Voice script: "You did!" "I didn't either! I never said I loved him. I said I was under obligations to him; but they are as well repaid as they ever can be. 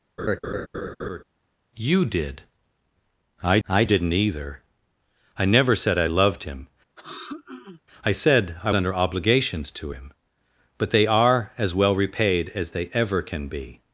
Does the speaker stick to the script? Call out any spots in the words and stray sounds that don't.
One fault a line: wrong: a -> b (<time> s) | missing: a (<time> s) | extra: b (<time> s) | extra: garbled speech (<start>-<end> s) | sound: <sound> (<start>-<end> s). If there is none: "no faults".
sound: laugh (0.2-1.2 s)
extra: I (3.7 s)
sound: throat clearing (7.0-7.8 s)
missing: was (8.7 s)